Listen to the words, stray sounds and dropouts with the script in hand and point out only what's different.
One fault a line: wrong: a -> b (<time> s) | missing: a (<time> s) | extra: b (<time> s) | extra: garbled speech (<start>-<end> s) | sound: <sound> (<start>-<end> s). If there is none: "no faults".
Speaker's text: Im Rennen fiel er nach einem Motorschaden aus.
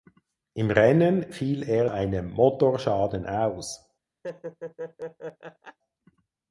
missing: nach (1.9 s)
sound: laugh (4.2-5.8 s)